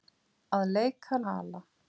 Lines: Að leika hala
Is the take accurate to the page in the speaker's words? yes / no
yes